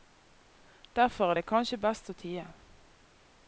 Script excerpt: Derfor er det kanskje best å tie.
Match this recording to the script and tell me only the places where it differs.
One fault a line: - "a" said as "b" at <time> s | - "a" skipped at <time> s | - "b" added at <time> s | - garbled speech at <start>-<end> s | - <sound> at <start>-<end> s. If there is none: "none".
none